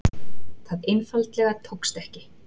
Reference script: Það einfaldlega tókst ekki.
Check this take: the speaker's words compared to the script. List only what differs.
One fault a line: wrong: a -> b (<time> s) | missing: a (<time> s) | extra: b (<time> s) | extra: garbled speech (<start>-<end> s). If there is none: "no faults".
no faults